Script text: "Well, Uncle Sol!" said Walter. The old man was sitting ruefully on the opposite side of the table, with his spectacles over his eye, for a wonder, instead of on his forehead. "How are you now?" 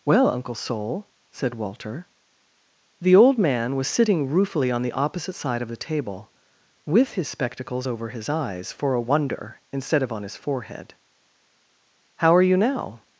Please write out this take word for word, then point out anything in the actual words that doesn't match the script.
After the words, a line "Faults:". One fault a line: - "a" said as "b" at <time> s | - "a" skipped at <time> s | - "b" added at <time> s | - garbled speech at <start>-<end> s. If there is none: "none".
"Well, Uncle Sol!" said Walter. The old man was sitting ruefully on the opposite side of the table, with his spectacles over his eyes, for a wonder, instead of on his forehead. "How are you now?"
Faults:
- "eye" said as "eyes" at 8.3 s